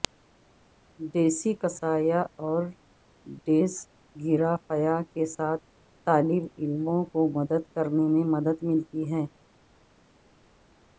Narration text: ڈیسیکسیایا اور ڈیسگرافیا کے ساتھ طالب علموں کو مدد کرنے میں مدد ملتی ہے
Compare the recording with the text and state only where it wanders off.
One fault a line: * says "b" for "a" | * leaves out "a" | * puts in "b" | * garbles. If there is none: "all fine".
all fine